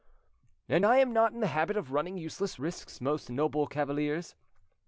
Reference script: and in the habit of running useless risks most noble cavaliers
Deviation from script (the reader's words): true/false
true